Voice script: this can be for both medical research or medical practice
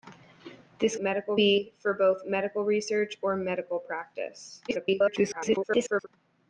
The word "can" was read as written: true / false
false